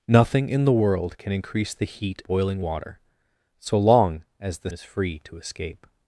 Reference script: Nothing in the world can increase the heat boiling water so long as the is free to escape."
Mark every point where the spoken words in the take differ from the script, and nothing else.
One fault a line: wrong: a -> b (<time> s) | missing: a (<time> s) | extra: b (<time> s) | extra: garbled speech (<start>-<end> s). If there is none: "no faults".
no faults